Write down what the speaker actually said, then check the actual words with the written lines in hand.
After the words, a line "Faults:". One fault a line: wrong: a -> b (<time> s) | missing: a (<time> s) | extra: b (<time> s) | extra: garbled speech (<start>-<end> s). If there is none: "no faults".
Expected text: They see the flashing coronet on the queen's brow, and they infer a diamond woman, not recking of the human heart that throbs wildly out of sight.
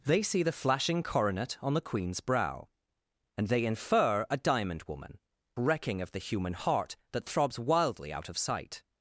They see the flashing coronet on the queen's brow, and they infer a diamond woman, recking of the human heart that throbs wildly out of sight.
Faults:
missing: not (5.2 s)